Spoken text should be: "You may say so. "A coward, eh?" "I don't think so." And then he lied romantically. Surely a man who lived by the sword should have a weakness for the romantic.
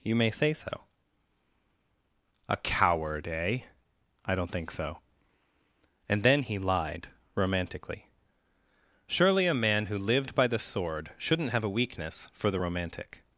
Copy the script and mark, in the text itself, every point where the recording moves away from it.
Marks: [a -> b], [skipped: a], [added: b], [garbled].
"You may say so. "A coward, eh?" "I don't think so." And then he lied romantically. Surely a man who lived by the sword [should -> shouldn't] have a weakness for the romantic.